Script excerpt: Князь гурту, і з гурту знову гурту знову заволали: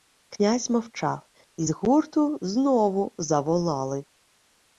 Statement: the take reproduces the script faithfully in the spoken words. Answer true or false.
false